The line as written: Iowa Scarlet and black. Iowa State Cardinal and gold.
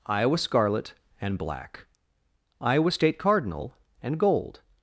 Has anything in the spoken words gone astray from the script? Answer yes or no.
no